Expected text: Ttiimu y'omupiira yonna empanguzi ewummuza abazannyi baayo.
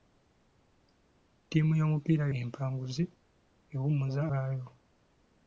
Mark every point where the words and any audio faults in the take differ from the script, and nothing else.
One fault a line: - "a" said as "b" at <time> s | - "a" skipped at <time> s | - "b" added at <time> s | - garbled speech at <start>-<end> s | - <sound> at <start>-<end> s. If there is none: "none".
- "yonna" skipped at 2.2 s
- "abazannyi" skipped at 4.2 s